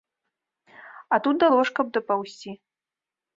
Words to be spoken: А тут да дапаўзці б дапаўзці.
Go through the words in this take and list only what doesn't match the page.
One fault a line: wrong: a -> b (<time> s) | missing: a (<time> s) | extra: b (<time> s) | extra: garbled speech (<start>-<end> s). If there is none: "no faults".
wrong: дапаўзці -> ложка (1.5 s)